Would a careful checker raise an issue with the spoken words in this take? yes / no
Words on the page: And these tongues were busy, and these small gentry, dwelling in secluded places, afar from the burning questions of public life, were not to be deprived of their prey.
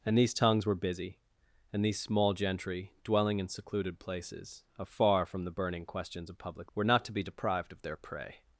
yes